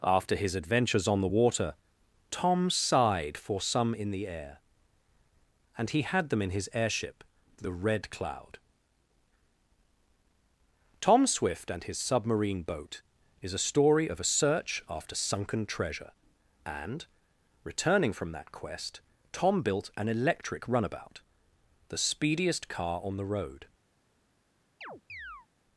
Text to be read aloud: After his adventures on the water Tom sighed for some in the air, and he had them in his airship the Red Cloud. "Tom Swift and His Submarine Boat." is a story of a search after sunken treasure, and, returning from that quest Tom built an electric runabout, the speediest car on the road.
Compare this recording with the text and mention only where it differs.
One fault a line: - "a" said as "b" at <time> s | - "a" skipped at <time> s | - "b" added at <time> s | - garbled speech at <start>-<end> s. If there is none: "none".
none